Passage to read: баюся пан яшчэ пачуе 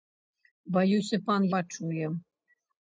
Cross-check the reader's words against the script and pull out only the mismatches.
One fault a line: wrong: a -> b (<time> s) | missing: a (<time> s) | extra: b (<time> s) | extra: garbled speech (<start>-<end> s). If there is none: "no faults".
missing: яшчэ (1.4 s)